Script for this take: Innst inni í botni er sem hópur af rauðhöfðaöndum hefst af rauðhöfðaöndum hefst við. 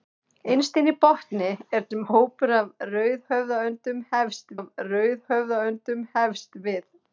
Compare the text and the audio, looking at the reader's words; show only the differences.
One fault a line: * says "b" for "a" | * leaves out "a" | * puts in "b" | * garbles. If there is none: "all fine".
all fine